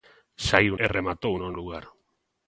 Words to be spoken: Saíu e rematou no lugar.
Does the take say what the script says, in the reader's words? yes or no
yes